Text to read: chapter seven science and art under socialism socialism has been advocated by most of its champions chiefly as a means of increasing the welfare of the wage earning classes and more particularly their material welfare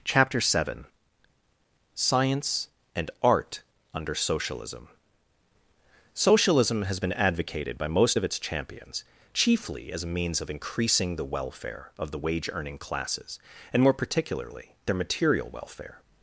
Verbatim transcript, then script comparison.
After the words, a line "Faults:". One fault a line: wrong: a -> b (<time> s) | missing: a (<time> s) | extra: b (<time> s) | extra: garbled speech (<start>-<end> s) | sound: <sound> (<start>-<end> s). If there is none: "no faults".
chapter seven science and art under socialism socialism has been advocated by most of its champions chiefly as a means of increasing the welfare of the wage earning classes and more particularly their material welfare
Faults:
no faults